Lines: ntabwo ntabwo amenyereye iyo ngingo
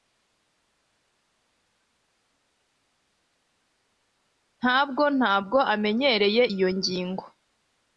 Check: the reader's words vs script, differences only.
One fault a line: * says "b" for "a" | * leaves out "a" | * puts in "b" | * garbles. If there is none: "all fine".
all fine